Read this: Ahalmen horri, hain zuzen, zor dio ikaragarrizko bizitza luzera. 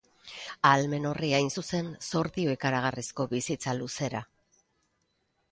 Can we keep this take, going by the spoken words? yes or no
yes